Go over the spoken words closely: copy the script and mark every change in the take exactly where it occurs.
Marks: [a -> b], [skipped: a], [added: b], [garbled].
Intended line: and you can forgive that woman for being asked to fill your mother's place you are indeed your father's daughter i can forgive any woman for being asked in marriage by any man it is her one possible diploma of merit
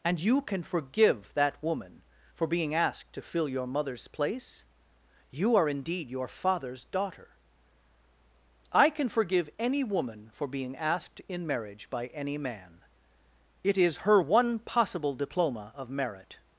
and you can forgive that woman for being asked to fill your mother's place you are indeed your father's daughter i can forgive any woman for being asked in marriage by any man it is her one possible diploma of merit